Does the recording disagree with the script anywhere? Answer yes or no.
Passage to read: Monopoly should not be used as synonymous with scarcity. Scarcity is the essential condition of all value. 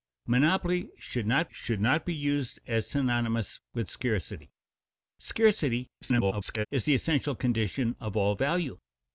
yes